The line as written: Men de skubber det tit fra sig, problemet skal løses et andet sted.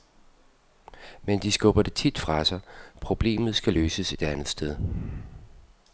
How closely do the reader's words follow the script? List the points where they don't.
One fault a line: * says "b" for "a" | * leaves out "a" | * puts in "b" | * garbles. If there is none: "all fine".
all fine